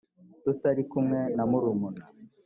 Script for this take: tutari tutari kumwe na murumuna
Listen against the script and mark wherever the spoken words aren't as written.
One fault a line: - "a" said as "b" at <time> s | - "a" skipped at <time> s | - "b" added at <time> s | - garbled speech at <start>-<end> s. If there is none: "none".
- "tutari" skipped at 0.8 s